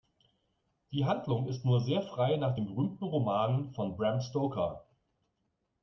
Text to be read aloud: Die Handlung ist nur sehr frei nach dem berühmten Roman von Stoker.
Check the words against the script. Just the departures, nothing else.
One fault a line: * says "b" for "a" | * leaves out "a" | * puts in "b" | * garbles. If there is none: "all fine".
* puts in "Bram"